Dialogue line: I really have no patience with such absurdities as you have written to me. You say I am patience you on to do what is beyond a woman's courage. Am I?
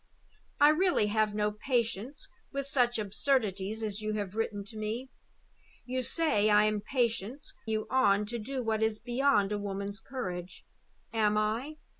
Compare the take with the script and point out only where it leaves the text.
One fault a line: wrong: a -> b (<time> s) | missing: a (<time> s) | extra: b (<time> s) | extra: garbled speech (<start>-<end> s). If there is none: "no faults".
no faults